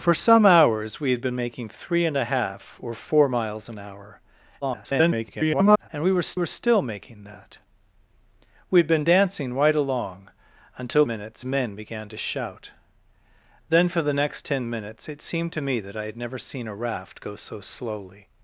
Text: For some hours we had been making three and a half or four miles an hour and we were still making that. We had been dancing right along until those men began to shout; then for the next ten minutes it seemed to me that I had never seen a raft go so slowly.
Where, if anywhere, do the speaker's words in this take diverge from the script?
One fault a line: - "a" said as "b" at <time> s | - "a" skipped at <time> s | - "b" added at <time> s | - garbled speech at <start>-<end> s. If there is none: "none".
- garbled speech at 4.6-5.9 s
- "were" added at 6.3 s
- "those" said as "minutes" at 11.1 s